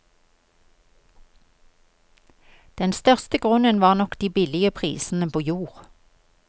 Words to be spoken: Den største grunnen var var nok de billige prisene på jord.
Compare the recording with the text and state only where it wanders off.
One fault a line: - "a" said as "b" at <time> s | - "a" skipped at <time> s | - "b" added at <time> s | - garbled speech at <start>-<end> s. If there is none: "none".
- "var" skipped at 3.9 s